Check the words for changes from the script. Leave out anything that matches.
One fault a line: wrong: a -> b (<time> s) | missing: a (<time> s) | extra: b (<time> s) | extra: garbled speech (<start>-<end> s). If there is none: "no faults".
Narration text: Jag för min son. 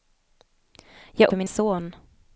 no faults